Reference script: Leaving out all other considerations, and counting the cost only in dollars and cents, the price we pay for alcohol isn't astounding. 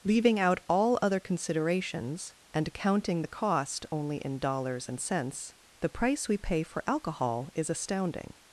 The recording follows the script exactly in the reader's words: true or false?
false